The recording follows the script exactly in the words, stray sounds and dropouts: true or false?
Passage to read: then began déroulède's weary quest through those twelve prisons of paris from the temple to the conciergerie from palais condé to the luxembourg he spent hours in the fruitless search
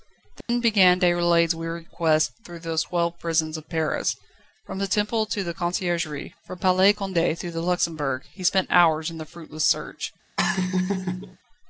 false